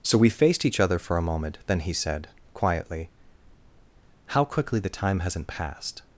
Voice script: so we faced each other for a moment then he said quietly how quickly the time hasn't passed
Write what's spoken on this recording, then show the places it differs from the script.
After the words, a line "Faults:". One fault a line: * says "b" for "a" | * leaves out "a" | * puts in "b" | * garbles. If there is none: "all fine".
so we faced each other for a moment then he said quietly how quickly the time hasn't passed
Faults:
all fine